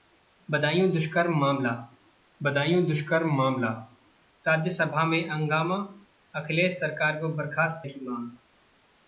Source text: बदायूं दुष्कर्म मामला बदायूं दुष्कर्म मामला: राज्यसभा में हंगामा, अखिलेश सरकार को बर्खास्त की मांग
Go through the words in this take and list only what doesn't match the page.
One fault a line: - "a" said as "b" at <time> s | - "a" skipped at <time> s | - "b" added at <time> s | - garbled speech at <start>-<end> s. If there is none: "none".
none